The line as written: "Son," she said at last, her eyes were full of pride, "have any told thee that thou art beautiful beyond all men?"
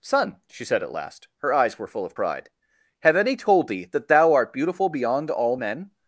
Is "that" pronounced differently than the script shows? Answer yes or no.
no